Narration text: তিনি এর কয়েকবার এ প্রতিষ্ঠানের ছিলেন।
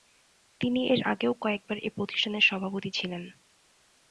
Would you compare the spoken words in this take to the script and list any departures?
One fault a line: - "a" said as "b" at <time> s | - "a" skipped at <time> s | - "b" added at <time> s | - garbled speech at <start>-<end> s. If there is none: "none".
- "আগেও" added at 1.0 s
- "সভাপতি" added at 2.4 s